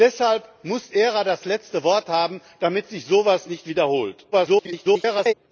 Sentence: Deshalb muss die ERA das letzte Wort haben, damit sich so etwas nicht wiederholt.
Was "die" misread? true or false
true